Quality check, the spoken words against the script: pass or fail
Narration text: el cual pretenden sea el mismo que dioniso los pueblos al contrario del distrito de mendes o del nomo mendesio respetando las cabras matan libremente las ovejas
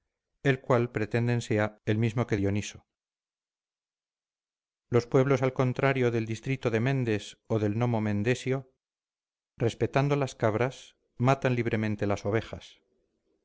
pass